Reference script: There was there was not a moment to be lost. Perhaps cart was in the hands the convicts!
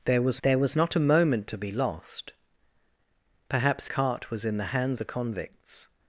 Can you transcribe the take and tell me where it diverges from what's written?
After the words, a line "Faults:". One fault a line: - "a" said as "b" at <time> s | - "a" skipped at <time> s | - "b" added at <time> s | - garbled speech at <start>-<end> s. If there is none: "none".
There was there was not a moment to be lost. Perhaps cart was in the hands the convicts!
Faults:
none